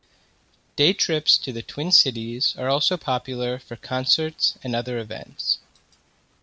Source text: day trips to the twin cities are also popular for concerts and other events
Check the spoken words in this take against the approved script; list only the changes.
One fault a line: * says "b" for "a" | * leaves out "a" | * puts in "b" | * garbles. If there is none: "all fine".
all fine